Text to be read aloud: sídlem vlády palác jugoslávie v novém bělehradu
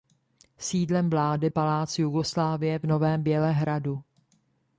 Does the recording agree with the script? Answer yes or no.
yes